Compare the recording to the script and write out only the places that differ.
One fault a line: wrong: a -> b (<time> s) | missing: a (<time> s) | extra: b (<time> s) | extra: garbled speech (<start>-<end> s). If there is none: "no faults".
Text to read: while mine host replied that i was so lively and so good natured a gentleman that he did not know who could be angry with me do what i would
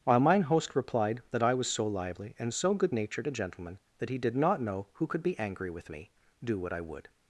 no faults